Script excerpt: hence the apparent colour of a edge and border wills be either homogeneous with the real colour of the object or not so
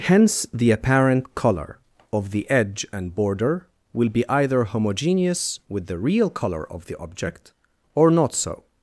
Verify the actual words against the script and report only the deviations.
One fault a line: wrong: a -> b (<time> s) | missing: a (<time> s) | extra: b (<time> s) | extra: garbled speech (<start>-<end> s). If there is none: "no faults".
wrong: a -> the (2.3 s)
wrong: wills -> will (3.9 s)